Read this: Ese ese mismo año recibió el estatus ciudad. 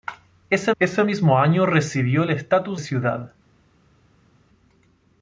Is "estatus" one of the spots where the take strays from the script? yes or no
no